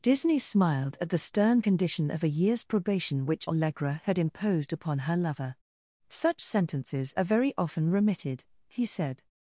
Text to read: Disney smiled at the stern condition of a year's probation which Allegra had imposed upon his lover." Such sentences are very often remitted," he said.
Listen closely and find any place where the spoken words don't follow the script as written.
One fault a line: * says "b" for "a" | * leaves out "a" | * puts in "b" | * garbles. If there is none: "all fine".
* says "her" for "his"